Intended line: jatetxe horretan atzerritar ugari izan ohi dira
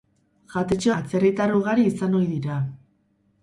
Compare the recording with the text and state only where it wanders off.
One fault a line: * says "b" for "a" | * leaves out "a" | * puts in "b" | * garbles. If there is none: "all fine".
* leaves out "horretan"